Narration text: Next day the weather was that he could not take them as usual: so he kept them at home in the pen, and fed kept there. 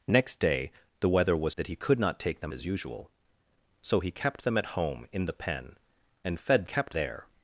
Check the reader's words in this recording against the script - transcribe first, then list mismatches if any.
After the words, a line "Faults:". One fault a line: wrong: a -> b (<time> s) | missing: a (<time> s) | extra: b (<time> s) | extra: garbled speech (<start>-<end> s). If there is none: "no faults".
Next day the weather was that he could not take them as usual: so he kept them at home in the pen, and fed kept there.
Faults:
no faults